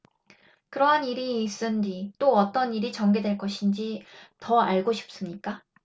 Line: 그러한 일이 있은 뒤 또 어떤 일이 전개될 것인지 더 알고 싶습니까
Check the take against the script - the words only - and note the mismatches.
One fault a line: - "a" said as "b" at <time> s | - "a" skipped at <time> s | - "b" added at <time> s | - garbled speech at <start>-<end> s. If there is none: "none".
none